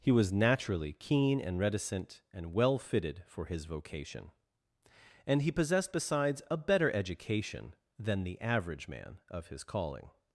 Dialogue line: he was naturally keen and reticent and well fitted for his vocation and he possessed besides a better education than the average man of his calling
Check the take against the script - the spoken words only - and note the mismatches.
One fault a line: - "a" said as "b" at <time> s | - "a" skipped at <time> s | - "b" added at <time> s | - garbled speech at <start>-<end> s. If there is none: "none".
none